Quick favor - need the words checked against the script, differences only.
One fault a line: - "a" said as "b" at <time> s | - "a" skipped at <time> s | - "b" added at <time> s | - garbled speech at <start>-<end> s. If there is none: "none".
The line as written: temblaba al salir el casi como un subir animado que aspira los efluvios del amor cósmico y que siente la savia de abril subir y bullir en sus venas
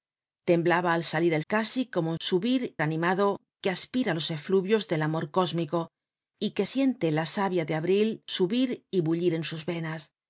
none